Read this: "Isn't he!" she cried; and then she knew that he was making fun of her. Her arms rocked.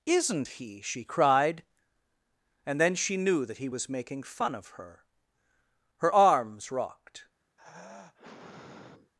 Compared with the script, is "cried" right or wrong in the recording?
right